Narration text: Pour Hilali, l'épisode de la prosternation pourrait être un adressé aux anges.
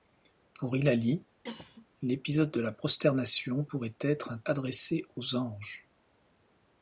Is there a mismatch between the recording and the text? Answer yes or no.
no